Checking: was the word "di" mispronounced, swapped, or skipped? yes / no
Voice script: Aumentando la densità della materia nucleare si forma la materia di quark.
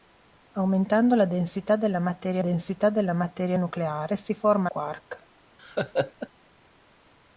yes